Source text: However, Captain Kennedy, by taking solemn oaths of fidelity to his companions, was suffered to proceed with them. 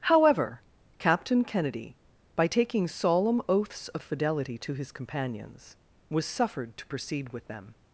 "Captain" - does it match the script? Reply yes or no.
yes